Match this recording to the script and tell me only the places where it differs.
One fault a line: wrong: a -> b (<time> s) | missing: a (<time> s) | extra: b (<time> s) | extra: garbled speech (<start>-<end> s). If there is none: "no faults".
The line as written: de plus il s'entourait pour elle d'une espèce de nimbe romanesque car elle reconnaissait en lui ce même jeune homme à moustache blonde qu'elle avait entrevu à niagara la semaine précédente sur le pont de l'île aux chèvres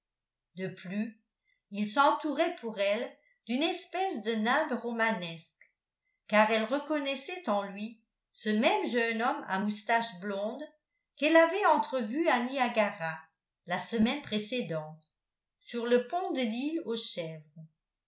no faults